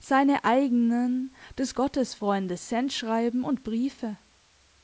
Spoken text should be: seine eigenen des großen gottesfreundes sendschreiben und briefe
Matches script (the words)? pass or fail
fail